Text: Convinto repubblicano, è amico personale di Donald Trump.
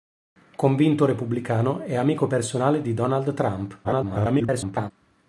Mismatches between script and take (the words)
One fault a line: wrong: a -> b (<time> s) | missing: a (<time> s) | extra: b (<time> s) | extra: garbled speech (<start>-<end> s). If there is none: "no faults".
extra: garbled speech (3.8-4.9 s)